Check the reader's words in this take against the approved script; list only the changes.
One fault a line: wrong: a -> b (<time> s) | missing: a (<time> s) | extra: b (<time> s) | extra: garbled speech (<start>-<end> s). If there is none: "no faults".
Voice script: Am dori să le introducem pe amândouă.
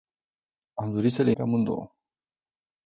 missing: introducem (1.3 s)